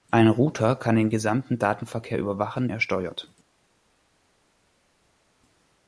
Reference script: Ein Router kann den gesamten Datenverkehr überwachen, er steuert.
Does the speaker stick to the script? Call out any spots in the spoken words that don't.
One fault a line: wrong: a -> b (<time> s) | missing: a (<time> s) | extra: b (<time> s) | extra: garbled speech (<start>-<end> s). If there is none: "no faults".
no faults